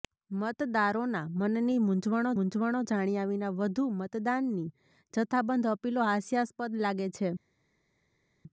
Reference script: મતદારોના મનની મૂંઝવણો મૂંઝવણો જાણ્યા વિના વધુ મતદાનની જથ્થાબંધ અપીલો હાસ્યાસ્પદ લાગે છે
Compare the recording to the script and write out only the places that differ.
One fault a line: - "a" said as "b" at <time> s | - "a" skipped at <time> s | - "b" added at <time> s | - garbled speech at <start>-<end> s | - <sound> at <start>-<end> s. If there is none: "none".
none